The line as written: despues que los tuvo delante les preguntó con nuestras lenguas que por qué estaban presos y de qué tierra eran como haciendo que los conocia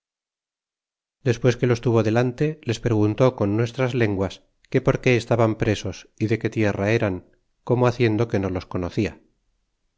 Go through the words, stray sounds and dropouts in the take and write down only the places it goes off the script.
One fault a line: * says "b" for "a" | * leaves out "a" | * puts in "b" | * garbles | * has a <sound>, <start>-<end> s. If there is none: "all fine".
* puts in "no"